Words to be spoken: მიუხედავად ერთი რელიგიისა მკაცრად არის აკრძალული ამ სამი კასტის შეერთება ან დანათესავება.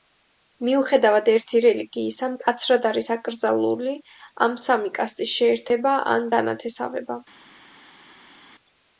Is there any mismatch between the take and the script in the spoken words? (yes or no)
no